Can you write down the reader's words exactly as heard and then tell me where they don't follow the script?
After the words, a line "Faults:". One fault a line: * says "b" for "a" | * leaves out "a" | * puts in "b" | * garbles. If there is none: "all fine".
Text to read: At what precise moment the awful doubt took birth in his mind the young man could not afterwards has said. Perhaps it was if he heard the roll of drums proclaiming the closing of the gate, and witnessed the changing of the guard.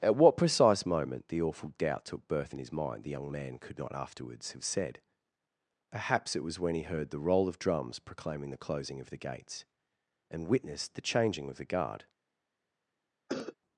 At what precise moment the awful doubt took birth in his mind the young man could not afterwards have said. Perhaps it was when he heard the roll of drums proclaiming the closing of the gates, and witnessed the changing of the guard.
Faults:
* says "have" for "has"
* says "when" for "if"
* says "gates" for "gate"